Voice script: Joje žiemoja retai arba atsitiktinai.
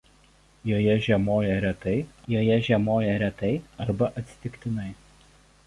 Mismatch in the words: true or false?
true